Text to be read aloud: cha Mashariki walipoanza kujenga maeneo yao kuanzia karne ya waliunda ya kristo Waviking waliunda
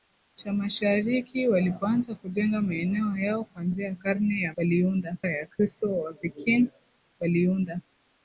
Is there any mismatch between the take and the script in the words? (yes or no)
no